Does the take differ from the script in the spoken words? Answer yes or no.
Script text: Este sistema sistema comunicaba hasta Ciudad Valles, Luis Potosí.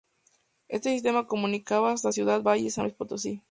yes